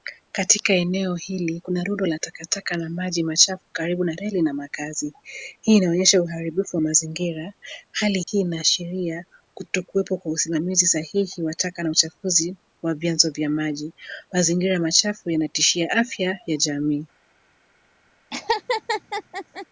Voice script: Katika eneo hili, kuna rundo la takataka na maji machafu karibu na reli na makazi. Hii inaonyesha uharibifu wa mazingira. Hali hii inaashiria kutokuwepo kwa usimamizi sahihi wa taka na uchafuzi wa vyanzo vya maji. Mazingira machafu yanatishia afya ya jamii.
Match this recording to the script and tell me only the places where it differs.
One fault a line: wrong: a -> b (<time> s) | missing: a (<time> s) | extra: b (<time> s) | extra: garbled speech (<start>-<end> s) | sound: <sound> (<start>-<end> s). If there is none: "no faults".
sound: dropout (8.2-8.3 s)
sound: laugh (18.3-19.7 s)